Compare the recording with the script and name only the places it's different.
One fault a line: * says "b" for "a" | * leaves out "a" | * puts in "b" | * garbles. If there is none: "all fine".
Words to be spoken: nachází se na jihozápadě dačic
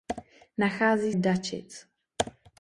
* leaves out "se na jihozápadě"